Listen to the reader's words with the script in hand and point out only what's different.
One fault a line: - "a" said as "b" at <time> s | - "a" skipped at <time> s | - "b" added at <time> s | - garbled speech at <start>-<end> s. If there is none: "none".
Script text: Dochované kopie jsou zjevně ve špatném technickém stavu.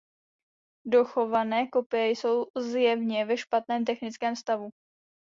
none